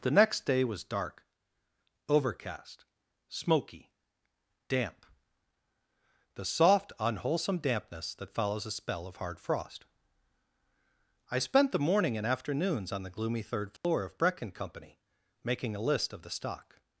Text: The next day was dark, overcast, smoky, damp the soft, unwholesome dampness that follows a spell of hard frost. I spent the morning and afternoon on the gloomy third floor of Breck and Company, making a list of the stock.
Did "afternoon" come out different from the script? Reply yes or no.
yes